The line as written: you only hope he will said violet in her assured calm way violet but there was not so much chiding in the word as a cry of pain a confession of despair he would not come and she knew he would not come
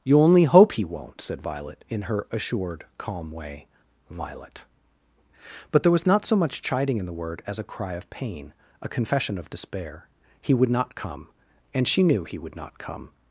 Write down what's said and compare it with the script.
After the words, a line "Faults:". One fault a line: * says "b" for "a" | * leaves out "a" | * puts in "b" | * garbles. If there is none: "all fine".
you only hope he won't said violet in her assured calm way violet but there was not so much chiding in the word as a cry of pain a confession of despair he would not come and she knew he would not come
Faults:
* says "won't" for "will"